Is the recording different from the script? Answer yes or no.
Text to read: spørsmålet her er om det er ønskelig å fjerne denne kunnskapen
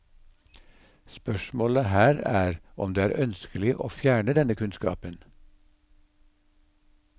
no